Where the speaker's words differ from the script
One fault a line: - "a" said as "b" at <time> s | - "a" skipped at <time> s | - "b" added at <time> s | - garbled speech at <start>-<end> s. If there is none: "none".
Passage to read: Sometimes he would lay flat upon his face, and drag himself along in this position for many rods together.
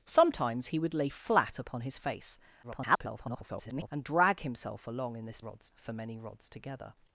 - garbled speech at 2.6-3.9 s
- "position" said as "rods" at 5.4 s